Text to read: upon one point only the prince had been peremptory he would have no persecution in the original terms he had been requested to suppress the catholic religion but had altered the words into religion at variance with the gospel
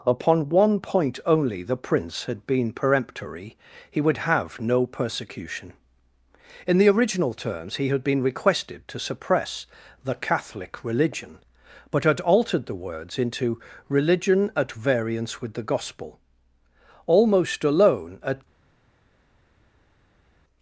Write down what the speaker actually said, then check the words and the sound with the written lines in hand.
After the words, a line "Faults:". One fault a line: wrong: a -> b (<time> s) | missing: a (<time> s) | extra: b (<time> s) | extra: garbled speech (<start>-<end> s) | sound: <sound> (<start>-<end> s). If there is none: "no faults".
upon one point only the prince had been peremptory he would have no persecution in the original terms he had been requested to suppress the catholic religion but had altered the words into religion at variance with the gospel almost alone at
Faults:
extra: almost alone at (17.1 s)